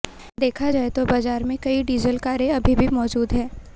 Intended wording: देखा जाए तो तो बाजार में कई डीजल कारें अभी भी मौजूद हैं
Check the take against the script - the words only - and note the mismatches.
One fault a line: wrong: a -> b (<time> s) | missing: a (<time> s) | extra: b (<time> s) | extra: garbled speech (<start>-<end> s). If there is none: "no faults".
missing: तो (1.0 s)